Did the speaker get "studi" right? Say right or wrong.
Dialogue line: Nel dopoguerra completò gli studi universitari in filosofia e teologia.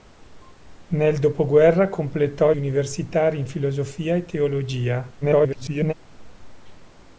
wrong